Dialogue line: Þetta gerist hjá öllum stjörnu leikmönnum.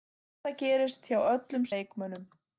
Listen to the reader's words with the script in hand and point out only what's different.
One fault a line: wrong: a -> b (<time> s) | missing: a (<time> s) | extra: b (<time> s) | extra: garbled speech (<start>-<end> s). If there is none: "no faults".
missing: stjörnu (1.7 s)